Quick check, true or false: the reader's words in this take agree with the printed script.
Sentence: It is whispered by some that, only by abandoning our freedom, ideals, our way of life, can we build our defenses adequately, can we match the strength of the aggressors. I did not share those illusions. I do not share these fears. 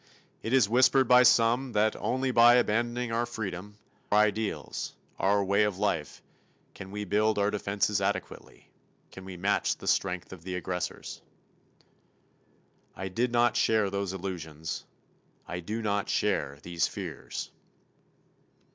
true